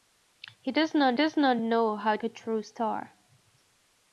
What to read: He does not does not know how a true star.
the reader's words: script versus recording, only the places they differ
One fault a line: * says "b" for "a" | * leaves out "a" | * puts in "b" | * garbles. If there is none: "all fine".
all fine